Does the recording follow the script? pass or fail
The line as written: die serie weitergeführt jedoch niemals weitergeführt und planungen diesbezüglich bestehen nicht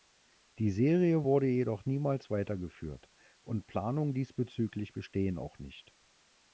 fail